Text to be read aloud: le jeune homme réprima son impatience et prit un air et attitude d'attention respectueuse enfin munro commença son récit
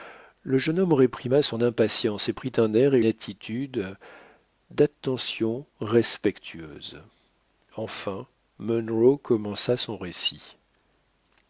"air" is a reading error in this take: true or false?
false